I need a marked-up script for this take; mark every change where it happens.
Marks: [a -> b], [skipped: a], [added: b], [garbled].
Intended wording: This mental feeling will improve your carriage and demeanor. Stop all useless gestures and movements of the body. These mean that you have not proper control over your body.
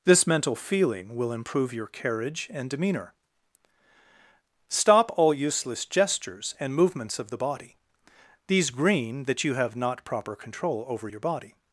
This mental feeling will improve your carriage and demeanor. Stop all useless gestures and movements of the body. These [mean -> green] that you have not proper control over your body.